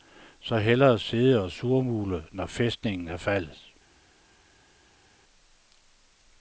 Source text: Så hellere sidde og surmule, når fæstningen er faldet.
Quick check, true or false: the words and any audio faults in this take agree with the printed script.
true